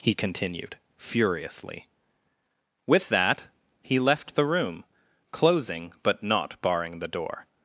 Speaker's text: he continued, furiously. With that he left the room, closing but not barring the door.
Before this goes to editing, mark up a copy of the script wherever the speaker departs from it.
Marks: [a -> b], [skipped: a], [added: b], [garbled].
he continued, furiously. With that he left the room, closing but not barring the door.